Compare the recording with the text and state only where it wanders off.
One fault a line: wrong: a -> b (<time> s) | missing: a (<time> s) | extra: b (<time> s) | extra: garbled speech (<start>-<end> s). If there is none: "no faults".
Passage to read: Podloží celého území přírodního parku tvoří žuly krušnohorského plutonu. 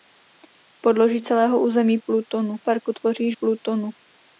wrong: přírodního -> plutonu (2.1 s)
missing: žuly krušnohorského (3.3 s)